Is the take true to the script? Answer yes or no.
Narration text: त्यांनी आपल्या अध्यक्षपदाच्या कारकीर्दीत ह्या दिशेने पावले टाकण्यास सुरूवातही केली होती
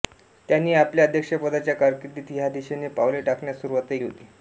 no